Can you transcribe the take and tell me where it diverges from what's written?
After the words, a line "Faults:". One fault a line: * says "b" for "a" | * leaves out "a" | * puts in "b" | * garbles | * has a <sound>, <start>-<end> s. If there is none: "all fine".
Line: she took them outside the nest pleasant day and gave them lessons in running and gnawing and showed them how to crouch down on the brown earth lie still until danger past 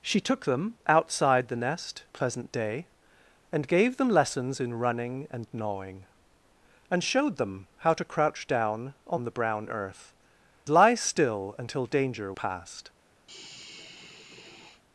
she took them outside the nest pleasant day and gave them lessons in running and gnawing and showed them how to crouch down on the brown earth lie still until danger past
Faults:
* has a sigh, 13.3-14.8 s